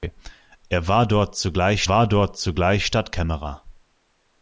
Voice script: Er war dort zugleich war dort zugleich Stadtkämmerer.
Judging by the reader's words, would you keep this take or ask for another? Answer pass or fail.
pass